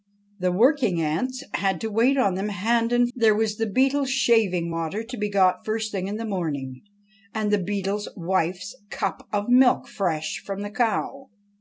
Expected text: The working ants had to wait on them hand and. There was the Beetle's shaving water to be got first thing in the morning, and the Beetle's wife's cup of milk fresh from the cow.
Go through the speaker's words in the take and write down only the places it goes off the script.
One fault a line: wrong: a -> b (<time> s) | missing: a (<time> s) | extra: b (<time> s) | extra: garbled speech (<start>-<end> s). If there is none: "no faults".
no faults